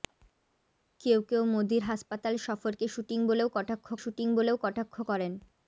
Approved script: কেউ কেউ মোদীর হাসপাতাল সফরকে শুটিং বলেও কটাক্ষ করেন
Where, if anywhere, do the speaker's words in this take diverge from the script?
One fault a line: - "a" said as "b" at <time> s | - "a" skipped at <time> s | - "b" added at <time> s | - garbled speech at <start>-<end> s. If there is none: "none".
- "শুটিং বলেও কটাক্ষ" added at 4.0 s